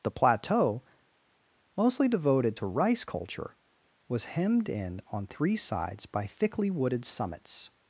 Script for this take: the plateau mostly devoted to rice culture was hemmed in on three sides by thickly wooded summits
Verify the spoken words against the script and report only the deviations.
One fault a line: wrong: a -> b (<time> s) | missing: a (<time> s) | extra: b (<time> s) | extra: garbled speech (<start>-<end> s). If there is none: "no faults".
no faults